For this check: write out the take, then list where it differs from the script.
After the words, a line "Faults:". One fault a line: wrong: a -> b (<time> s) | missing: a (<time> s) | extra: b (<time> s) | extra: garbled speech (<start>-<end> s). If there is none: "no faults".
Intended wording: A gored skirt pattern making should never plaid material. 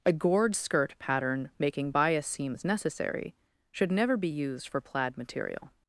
A gored skirt pattern making bias seams necessary should never be used for plaid material.
Faults:
extra: bias seams necessary (1.9 s)
extra: be used for (4.1 s)